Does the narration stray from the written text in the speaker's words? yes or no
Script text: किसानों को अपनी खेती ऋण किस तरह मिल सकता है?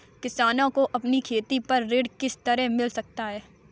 yes